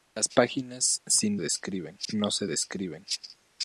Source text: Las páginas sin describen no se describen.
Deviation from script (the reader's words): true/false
false